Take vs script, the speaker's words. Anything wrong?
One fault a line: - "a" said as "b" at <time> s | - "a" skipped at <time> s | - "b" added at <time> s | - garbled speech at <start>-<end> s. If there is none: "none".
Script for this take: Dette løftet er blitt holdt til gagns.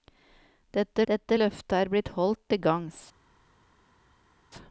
- "dette" added at 1.1 s